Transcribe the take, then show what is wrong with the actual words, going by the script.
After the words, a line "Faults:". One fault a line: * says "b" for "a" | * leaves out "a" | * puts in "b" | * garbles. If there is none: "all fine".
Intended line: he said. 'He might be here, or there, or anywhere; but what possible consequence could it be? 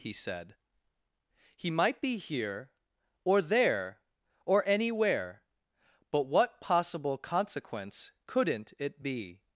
he said. 'He might be here, or there, or anywhere; but what possible consequence couldn't it be?
Faults:
* says "couldn't" for "could"